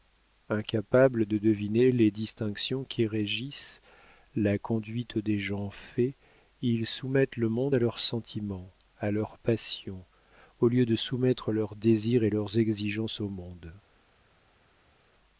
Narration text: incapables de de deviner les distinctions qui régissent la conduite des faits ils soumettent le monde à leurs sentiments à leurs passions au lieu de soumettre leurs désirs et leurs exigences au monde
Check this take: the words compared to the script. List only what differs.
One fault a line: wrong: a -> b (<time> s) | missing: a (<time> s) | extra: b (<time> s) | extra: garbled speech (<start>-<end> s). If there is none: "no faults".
missing: de (1.4 s)
extra: gens (5.4 s)